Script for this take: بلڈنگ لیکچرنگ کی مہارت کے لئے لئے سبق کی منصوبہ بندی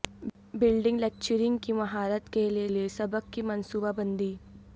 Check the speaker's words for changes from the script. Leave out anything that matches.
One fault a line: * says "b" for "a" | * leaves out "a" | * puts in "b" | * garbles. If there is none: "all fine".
all fine